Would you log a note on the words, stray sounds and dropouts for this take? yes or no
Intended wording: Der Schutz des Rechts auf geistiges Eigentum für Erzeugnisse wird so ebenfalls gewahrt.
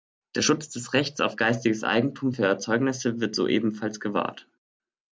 no